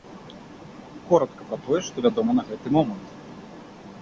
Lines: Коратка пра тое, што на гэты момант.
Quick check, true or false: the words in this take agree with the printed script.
false